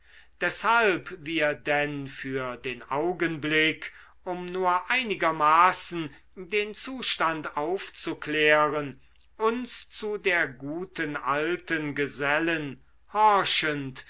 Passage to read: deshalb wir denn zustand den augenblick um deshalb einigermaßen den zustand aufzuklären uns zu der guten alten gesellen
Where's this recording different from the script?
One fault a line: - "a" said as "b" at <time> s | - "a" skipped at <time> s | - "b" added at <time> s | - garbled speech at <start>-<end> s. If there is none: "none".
- "zustand" said as "für" at 2.1 s
- "deshalb" said as "nur" at 4.5 s